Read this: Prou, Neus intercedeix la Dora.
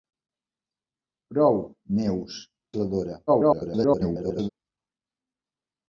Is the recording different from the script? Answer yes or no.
yes